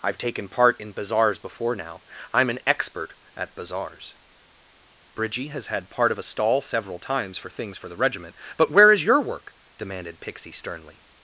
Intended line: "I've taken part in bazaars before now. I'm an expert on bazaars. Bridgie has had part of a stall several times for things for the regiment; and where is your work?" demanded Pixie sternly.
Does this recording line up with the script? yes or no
no